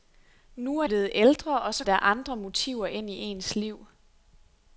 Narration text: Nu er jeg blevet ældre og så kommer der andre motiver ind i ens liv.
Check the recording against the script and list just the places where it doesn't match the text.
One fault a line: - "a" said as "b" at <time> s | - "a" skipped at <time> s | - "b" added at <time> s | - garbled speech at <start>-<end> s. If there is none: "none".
- "jeg" skipped at 0.9 s
- "kommer" skipped at 1.8 s